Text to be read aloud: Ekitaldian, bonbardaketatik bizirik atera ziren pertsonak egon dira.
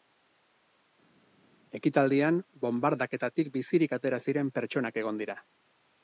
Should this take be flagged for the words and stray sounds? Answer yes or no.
no